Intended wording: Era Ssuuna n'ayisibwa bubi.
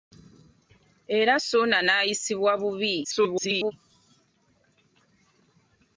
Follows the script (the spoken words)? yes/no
no